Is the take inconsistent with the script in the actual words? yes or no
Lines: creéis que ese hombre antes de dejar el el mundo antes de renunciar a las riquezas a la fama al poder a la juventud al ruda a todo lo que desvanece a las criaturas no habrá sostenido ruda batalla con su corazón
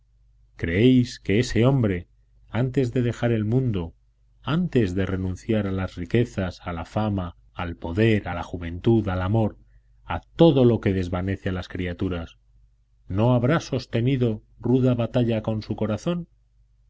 yes